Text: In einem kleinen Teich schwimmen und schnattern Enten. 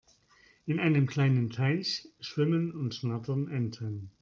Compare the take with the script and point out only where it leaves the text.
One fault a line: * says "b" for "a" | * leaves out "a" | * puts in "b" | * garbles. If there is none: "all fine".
all fine